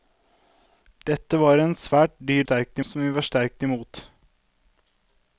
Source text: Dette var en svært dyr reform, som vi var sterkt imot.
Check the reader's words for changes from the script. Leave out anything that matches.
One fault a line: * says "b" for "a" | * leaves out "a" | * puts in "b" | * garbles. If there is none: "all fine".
* says "sterkt" for "reform"